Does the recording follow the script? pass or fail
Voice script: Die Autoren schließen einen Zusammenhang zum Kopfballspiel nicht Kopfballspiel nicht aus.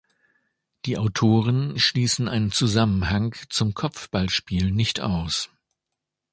fail